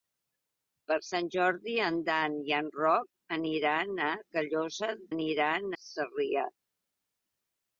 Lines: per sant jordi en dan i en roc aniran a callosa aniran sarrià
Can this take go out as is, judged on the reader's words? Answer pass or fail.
pass